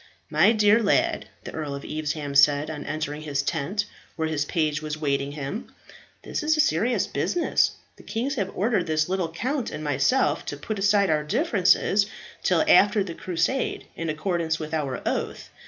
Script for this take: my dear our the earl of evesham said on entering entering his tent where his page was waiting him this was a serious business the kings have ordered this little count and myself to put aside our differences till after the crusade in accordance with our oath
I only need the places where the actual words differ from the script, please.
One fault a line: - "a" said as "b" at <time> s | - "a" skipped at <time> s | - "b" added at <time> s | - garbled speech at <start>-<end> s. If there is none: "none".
- "our" said as "lad" at 0.8 s
- "entering" skipped at 3.2 s
- "was" said as "is" at 6.4 s